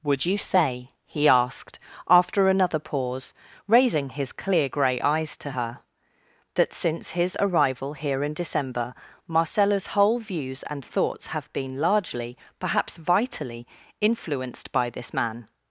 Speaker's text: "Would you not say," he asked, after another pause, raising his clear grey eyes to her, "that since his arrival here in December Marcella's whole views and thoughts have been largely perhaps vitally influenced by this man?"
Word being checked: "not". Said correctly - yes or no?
no